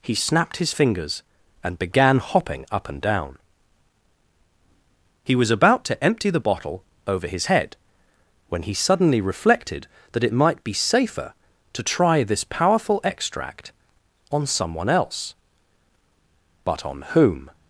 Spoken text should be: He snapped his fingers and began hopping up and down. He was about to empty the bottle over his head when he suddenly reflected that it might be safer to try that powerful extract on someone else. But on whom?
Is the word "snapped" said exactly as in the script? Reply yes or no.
yes